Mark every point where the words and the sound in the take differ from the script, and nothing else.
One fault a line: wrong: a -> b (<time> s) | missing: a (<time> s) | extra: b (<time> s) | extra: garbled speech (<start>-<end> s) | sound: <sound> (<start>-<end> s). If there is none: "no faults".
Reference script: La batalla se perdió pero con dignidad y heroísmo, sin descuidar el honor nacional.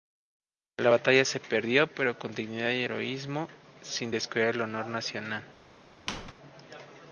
sound: squeak (6.1-6.3 s)